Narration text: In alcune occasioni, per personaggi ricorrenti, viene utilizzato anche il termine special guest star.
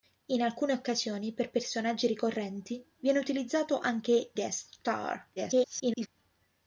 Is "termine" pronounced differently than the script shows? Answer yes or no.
yes